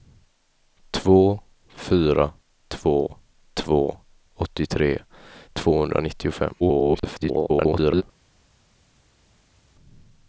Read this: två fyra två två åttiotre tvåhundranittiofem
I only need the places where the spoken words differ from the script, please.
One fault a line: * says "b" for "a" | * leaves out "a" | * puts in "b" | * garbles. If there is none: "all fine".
* garbles